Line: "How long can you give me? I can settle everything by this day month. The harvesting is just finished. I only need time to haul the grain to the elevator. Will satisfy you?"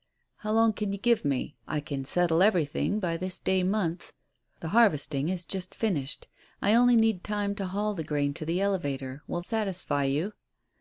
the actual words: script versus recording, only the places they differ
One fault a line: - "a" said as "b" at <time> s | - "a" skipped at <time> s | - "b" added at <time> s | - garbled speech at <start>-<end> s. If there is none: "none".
none